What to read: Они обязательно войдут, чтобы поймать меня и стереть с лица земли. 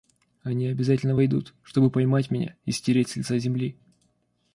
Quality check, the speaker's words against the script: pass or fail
pass